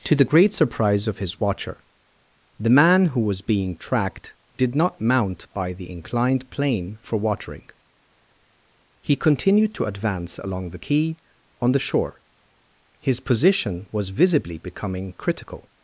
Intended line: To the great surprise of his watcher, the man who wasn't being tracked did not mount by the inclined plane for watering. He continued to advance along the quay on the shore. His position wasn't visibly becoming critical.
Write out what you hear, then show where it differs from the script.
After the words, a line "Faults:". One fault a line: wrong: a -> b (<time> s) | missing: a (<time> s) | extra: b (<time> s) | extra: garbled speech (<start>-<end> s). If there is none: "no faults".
To the great surprise of his watcher, the man who was being tracked did not mount by the inclined plane for watering. He continued to advance along the quay on the shore. His position was visibly becoming critical.
Faults:
wrong: wasn't -> was (3.2 s)
wrong: wasn't -> was (13.9 s)